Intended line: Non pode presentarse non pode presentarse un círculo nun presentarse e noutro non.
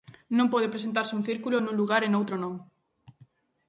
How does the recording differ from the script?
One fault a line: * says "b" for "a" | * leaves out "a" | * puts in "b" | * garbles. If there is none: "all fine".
* leaves out "non pode presentarse"
* says "lugar" for "presentarse"